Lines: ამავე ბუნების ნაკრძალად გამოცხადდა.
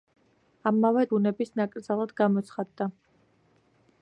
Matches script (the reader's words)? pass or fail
pass